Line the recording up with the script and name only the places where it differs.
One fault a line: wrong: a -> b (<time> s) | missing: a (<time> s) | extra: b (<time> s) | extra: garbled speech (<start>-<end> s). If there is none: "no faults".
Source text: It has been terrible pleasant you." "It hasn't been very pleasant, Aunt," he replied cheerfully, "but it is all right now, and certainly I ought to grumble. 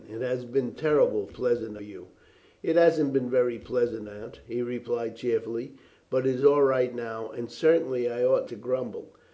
no faults